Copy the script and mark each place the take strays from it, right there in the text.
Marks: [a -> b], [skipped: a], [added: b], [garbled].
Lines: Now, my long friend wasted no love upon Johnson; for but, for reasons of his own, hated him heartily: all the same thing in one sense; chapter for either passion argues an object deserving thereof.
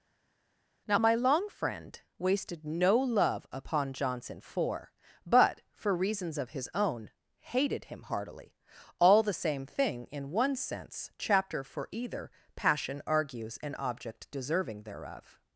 Now, my long friend wasted no love upon Johnson; for but, for reasons of his own, hated him heartily: all the same thing in one sense; chapter for either passion argues an object deserving thereof.